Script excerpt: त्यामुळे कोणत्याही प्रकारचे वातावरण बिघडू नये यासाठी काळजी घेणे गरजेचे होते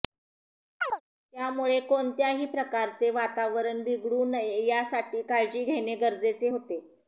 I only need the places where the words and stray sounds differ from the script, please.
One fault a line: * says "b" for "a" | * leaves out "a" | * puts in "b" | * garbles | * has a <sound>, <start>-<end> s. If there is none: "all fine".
* has a chirp, 0.8-1.0 s